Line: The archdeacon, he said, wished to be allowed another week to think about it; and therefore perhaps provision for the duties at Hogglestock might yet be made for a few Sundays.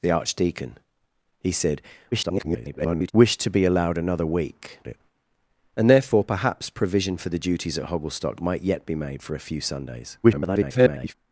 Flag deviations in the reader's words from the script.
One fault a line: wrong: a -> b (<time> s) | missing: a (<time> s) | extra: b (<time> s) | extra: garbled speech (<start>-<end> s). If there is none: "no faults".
extra: garbled speech (2.1-3.1 s)
missing: to think about (4.8 s)
extra: garbled speech (10.2-11.1 s)